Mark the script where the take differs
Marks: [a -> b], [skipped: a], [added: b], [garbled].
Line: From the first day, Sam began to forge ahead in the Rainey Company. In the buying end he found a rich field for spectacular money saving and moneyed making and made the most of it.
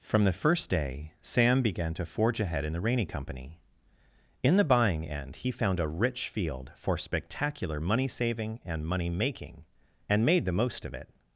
From the first day, Sam began to forge ahead in the Rainey Company. In the buying end he found a rich field for spectacular money saving and [moneyed -> money] making and made the most of it.